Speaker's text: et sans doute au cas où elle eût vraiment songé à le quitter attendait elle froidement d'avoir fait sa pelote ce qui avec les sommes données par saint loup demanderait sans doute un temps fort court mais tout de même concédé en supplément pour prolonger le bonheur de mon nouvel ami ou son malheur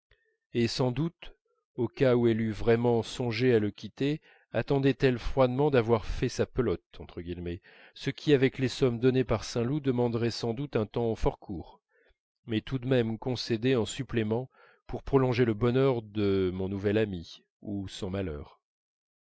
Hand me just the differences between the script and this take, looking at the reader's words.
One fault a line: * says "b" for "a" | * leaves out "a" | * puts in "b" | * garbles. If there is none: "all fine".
all fine